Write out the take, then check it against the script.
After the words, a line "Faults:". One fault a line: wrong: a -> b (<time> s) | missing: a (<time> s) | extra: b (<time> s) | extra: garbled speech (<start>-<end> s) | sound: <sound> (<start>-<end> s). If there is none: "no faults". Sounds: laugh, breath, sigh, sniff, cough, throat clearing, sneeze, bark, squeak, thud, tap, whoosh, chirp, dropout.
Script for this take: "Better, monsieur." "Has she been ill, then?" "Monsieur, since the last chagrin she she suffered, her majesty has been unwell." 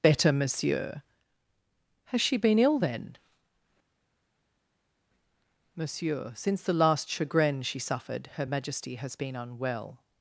"Better, monsieur." "Has she been ill, then?" "Monsieur, since the last chagrin she suffered, her majesty has been unwell."
Faults:
missing: she (7.8 s)